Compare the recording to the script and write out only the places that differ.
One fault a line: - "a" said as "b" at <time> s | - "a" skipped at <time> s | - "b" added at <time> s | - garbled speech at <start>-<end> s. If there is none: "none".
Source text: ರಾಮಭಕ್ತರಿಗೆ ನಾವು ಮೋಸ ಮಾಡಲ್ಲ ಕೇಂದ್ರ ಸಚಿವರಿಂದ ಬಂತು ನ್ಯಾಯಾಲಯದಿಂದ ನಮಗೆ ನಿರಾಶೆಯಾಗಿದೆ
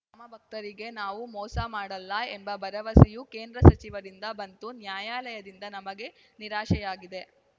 - "ಎಂಬ ಭರವಸೆಯೂ" added at 2.3 s